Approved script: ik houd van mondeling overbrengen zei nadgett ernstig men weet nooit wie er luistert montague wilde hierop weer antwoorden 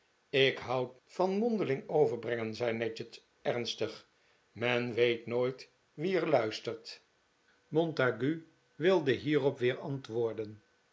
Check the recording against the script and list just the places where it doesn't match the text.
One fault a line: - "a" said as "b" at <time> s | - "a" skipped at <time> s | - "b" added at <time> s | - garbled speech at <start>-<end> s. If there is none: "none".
none